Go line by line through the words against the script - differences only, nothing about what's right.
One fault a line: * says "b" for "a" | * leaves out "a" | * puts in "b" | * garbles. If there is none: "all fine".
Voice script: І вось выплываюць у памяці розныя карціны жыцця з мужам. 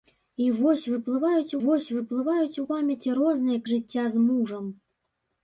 * puts in "вось выплываюць"
* leaves out "карціны"